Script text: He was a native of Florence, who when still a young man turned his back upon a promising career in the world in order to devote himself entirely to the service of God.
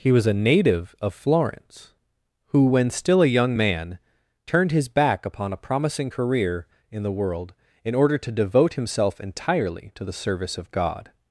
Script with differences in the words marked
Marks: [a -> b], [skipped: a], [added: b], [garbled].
He was a native of Florence, who when still a young man turned his back upon a promising career in the world in order to devote himself entirely to the service of God.